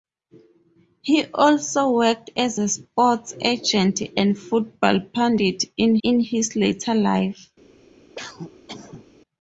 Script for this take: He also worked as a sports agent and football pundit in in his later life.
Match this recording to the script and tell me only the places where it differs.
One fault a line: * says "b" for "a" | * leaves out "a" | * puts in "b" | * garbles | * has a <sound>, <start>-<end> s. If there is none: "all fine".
* has a cough, 8.1-9.1 s